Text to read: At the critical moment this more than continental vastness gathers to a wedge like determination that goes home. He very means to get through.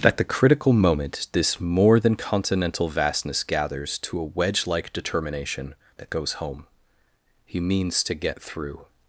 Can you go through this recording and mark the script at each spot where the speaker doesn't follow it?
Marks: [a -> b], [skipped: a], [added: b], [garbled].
At the critical moment this more than continental vastness gathers to a wedge like determination that goes home. He [skipped: very] means to get through.